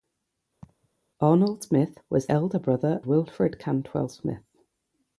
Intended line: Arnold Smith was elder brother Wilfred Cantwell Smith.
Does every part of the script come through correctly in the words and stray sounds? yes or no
no